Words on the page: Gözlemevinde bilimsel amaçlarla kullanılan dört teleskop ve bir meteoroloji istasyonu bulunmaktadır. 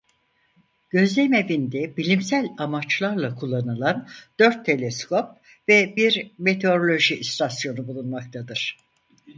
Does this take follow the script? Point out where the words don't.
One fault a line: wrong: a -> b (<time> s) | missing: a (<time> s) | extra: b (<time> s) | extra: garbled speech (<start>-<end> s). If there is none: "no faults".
no faults